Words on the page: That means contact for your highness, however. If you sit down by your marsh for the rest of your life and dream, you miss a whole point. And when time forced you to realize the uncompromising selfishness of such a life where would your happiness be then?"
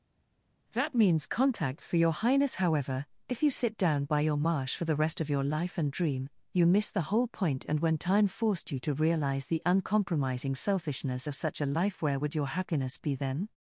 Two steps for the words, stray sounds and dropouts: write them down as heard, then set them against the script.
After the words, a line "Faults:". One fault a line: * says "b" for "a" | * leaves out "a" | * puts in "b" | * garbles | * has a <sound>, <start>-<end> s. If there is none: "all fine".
That means contact for your highness, however. If you sit down by your marsh for the rest of your life and dream, you miss the whole point. And when time forced you to realize the uncompromising selfishness of such a life where would your happiness be then?"
Faults:
* says "the" for "a"